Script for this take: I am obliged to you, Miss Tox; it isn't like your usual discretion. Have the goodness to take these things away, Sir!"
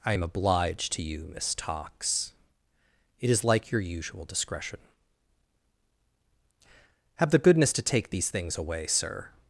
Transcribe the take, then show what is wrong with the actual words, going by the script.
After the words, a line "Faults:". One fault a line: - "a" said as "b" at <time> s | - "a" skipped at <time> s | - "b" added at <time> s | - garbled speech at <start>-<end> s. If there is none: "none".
I am obliged to you, Miss Tox; it is like your usual discretion. Have the goodness to take these things away, Sir!"
Faults:
- "isn't" said as "is" at 3.3 s